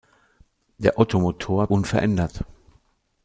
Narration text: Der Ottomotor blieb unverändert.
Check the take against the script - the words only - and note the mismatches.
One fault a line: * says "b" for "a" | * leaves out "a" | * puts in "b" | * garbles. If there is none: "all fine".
* leaves out "blieb"